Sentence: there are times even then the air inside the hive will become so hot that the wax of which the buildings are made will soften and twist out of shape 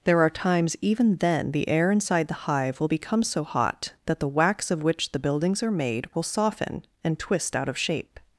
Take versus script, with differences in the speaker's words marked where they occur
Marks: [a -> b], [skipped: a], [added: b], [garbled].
there are times even then the air inside the hive will become so hot that the wax of which the buildings are made will soften and twist out of shape